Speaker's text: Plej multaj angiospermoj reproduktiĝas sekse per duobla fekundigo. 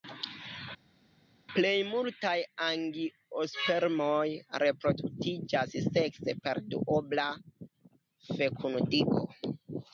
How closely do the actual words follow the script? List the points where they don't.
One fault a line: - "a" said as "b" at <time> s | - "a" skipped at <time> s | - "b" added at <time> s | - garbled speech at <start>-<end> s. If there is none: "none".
none